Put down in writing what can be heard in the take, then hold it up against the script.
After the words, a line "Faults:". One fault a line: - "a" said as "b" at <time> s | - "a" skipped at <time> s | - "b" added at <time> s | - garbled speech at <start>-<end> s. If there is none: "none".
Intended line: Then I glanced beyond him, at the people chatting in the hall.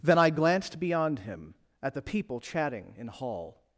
Then I glanced beyond him, at the people chatting in hall.
Faults:
- "the" skipped at 3.1 s